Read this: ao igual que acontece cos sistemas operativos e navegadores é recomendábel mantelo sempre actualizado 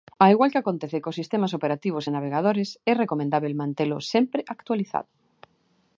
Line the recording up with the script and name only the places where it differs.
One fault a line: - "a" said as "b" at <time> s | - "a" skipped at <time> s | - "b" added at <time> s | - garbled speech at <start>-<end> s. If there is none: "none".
none